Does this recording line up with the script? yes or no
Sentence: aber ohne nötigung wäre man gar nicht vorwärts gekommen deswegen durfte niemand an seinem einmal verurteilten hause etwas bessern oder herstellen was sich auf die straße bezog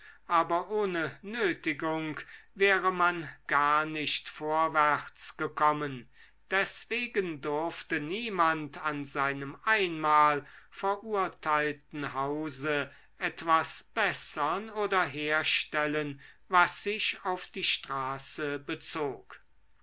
yes